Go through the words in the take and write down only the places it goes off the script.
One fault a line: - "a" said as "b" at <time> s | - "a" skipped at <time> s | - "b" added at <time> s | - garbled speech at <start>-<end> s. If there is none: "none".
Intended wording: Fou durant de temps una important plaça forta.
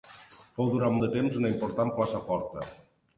none